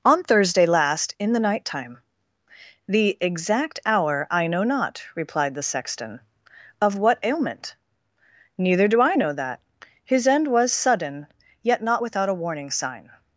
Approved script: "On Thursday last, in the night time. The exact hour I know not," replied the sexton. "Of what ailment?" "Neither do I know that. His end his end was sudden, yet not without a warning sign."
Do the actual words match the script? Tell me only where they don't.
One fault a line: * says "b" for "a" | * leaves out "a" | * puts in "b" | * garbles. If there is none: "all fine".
* leaves out "his end"